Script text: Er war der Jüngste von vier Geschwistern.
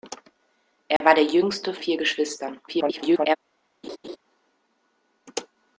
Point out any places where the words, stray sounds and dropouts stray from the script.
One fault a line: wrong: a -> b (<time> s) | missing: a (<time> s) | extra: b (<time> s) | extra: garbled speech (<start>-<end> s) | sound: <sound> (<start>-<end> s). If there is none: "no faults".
sound: dropout (1.0-1.0 s)
missing: von (1.8 s)
extra: garbled speech (2.7-3.4 s)
sound: laugh (3.8-4.2 s)